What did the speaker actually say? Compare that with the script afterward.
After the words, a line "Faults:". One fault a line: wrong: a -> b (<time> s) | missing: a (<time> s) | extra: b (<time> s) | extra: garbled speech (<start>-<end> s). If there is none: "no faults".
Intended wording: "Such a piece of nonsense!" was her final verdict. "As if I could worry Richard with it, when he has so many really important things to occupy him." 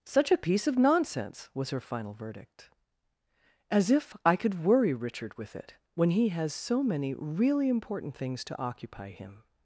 "Such a piece of nonsense!" was her final verdict. "As if I could worry Richard with it, when he has so many really important things to occupy him."
Faults:
no faults